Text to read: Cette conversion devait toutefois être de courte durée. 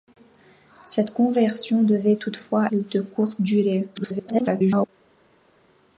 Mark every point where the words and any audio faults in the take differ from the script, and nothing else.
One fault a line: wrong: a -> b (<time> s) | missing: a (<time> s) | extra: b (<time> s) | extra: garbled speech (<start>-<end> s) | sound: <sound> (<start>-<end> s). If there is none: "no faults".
missing: être (2.7 s)
extra: garbled speech (3.9-4.9 s)